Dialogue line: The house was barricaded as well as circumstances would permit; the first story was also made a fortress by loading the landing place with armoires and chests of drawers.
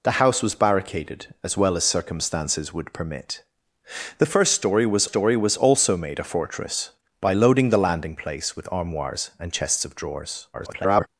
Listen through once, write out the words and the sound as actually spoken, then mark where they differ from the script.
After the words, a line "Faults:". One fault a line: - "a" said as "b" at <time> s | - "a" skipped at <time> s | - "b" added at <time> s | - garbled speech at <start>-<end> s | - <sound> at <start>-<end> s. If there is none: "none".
The house was barricaded as well as circumstances would permit; the first story was story was also made a fortress by loading the landing place with armoires and chests of drawers. [garbled]
Faults:
- "story was" added at 5.0 s
- garbled speech at 10.5-11.1 s